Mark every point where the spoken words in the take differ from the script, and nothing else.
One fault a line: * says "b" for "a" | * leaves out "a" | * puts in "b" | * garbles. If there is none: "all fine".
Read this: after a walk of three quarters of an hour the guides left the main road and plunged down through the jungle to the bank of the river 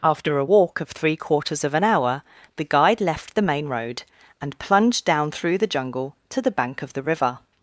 * says "guide" for "guides"